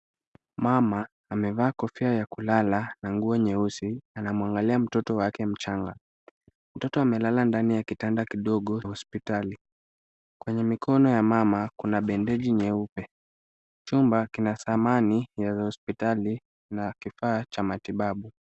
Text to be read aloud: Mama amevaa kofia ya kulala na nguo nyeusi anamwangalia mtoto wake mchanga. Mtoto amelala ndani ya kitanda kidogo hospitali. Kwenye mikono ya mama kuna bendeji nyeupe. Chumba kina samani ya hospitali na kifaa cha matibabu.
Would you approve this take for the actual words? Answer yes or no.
yes